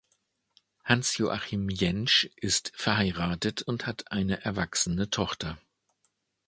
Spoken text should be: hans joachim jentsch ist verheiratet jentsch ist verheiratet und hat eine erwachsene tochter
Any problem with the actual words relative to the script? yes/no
yes